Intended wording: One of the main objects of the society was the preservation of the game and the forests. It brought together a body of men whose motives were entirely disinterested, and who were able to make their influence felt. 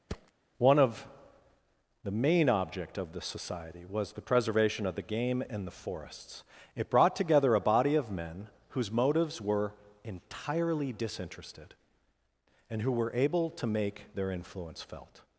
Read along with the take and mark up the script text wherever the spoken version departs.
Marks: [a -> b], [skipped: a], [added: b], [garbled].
One of the main [objects -> object] of the society was the preservation of the game and the forests. It brought together a body of men whose motives were entirely disinterested, and who were able to make their influence felt.